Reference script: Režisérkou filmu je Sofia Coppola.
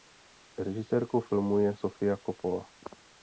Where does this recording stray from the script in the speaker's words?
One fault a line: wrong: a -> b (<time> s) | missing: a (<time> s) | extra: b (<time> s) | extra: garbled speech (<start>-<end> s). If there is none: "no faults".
no faults